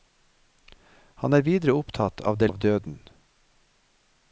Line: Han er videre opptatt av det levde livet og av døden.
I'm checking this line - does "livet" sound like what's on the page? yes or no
no